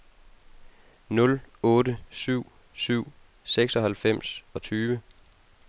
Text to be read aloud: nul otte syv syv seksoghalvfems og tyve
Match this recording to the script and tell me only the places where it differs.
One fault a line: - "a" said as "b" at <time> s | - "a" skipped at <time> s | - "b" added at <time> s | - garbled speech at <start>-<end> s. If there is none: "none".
none